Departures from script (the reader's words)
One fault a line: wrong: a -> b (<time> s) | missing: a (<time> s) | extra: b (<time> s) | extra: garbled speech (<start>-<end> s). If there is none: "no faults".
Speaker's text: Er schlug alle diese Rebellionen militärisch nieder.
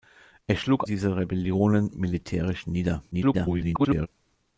missing: alle (0.9 s)
extra: garbled speech (3.1-4.1 s)